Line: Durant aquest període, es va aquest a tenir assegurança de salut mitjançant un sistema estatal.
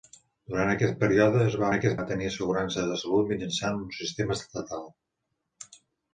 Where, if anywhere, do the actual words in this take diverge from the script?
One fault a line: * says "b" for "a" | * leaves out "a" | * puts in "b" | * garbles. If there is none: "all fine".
all fine